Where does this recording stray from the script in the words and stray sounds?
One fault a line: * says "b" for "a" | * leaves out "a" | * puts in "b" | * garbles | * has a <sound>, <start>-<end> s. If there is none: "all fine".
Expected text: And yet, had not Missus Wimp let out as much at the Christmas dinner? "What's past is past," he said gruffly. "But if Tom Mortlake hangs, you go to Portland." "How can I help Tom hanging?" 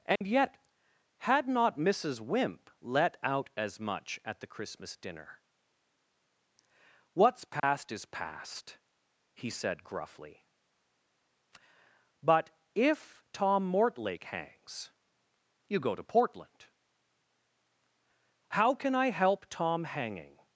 * has a dropout, 0.2-0.2 s
* has a dropout, 7.6-7.6 s